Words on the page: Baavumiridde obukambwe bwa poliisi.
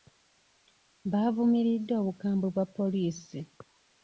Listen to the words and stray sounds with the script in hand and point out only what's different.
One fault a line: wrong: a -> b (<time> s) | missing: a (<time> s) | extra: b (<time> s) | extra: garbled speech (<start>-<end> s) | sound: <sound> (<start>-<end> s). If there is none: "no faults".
no faults